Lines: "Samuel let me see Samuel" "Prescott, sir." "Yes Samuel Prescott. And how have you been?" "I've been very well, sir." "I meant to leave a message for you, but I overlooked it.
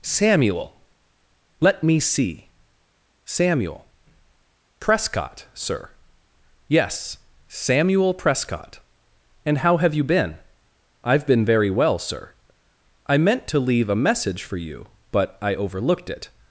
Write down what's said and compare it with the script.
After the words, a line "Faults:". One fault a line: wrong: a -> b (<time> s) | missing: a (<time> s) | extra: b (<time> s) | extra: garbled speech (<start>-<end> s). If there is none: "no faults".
"Samuel let me see Samuel" "Prescott, sir." "Yes Samuel Prescott. And how have you been?" "I've been very well, sir." "I meant to leave a message for you, but I overlooked it.
Faults:
no faults